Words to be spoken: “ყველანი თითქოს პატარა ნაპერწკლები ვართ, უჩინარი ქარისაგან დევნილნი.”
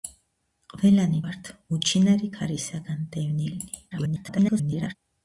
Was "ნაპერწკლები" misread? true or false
true